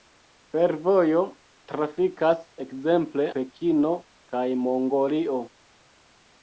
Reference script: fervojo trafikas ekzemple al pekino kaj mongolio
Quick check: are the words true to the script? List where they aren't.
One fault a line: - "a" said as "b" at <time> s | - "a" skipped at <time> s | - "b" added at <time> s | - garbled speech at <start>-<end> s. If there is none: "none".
- "al" skipped at 3.3 s